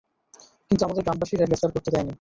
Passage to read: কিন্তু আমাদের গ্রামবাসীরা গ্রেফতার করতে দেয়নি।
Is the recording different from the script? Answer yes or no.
no